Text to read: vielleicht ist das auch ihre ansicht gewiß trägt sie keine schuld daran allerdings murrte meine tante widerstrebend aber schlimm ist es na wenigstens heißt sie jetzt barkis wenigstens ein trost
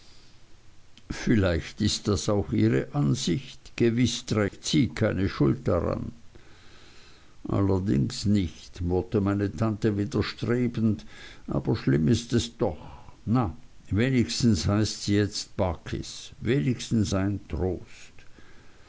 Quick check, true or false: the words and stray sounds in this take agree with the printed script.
false